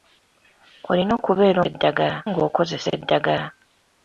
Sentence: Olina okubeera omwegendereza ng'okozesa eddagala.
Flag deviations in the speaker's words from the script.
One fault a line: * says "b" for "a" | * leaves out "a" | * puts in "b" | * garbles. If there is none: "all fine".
* says "eddagala" for "omwegendereza"